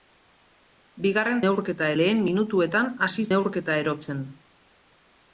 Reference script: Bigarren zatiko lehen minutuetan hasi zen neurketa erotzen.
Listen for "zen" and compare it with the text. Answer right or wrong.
wrong